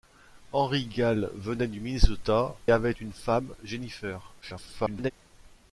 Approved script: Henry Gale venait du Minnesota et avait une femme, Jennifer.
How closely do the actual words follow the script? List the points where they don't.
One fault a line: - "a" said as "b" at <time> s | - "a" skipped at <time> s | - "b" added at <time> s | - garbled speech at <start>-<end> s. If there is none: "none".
- "et" skipped at 2.5 s
- garbled speech at 4.4-5.1 s